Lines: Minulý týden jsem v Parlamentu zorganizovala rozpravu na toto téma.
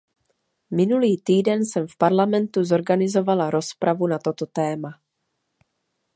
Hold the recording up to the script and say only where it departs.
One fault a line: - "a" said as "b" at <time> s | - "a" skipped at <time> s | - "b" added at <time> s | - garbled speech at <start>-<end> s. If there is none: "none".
none